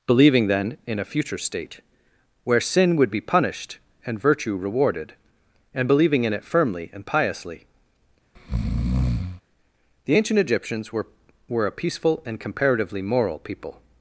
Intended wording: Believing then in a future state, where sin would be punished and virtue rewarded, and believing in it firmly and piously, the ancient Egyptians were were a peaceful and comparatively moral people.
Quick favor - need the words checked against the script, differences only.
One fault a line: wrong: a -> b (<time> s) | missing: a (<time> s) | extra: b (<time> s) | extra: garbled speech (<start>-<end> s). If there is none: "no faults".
no faults